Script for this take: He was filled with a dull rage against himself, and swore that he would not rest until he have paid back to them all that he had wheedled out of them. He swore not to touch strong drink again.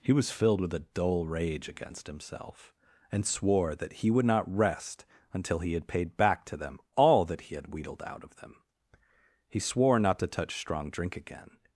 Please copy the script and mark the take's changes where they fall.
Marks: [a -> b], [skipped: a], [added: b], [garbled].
He was filled with a dull rage against himself, and swore that he would not rest until he [have -> had] paid back to them all that he had wheedled out of them. He swore not to touch strong drink again.